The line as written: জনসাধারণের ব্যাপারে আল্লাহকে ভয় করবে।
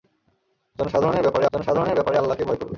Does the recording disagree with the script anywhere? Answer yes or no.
yes